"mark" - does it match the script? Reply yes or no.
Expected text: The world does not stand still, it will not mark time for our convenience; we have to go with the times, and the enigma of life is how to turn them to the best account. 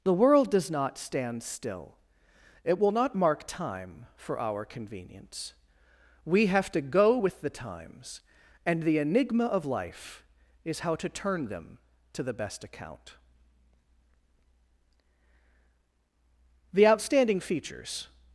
yes